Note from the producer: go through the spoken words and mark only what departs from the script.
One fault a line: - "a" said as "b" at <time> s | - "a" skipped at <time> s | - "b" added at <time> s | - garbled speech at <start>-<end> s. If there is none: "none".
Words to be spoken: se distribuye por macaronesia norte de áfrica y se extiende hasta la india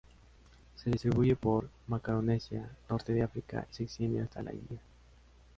none